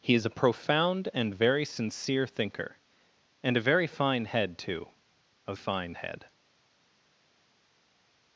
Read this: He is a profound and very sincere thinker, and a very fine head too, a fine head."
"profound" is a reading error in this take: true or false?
false